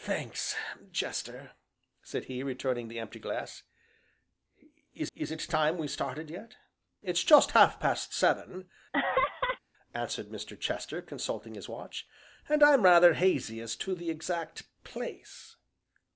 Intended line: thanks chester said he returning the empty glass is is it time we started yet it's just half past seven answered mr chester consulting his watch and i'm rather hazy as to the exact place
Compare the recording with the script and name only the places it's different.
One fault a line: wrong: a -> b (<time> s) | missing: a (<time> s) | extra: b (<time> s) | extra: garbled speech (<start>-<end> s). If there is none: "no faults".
no faults